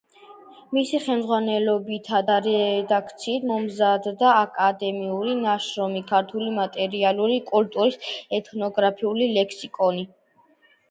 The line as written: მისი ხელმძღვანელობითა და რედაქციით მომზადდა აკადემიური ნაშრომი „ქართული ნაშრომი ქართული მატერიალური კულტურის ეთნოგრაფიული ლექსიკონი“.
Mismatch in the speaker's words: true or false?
true